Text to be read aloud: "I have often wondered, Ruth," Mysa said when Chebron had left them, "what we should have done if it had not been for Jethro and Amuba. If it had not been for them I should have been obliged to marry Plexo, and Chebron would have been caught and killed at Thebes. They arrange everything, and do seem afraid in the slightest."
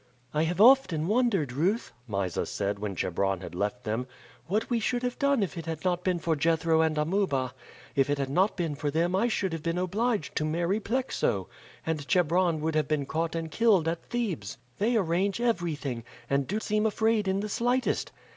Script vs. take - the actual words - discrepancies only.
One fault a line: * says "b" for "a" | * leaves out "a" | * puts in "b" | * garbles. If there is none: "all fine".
all fine